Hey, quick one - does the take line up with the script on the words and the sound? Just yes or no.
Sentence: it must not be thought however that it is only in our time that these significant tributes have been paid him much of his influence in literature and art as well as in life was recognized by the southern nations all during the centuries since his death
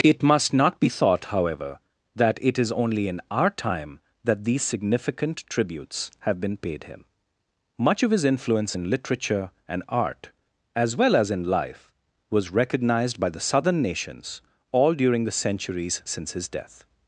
yes